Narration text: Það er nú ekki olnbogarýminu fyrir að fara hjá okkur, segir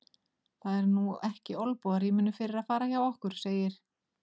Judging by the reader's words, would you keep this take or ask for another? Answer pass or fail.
pass